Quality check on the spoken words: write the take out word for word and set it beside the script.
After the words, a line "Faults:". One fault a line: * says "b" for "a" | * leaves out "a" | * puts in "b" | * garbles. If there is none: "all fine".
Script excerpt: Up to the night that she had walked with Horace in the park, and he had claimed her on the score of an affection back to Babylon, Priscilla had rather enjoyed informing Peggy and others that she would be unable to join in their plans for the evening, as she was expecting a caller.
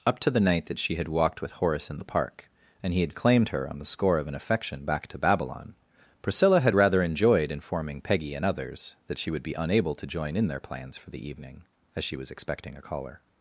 Up to the night that she had walked with Horace in the park, and he had claimed her on the score of an affection back to Babylon, Priscilla had rather enjoyed informing Peggy and others that she would be unable to join in their plans for the evening, as she was expecting a caller.
Faults:
all fine